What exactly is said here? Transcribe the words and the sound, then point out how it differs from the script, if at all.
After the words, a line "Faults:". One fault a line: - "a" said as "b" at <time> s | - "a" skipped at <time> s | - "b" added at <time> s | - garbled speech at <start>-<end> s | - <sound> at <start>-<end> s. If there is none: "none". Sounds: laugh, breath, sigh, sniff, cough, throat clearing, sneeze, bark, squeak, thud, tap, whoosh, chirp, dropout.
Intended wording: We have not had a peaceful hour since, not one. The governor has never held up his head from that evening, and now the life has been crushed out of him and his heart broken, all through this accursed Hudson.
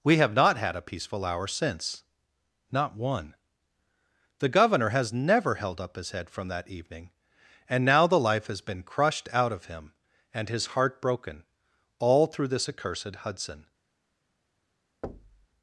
We have not had a peaceful hour since, not one. The governor has never held up his head from that evening, and now the life has been crushed out of him and his heart broken, all through this accursed Hudson.
Faults:
- thud at 15.0-15.5 s